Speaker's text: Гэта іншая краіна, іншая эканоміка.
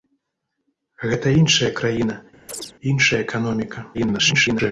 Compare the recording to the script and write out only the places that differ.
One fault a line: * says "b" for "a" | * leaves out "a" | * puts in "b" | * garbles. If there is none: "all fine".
* garbles